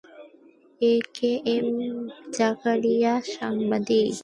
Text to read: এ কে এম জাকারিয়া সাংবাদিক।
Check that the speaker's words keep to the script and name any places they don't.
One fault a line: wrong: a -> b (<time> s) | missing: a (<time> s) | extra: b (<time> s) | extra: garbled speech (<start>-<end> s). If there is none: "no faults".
no faults